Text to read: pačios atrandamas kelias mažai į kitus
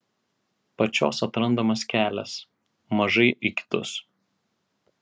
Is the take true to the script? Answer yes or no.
yes